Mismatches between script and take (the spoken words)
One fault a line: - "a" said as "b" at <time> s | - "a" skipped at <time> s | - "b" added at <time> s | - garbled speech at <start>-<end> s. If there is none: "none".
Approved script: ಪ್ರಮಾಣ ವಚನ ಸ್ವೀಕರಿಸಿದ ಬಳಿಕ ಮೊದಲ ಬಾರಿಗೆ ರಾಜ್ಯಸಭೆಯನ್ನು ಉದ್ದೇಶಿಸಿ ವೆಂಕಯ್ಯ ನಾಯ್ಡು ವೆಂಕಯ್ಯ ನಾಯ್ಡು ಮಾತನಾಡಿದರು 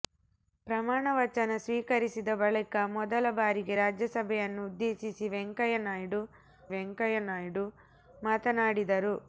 none